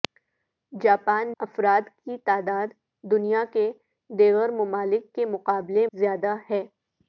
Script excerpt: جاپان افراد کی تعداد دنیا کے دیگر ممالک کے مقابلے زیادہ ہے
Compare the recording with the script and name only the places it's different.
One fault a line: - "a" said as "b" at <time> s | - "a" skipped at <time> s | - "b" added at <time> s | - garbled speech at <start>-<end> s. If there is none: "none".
none